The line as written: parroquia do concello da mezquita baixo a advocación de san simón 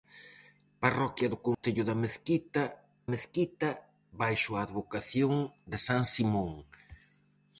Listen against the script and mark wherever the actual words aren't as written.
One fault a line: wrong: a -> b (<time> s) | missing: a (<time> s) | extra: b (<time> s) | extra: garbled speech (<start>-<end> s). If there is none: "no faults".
extra: mezquita (3.1 s)